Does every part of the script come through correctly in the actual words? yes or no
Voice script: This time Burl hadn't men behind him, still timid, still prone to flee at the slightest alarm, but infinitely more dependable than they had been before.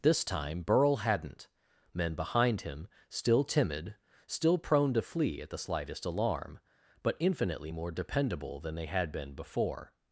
yes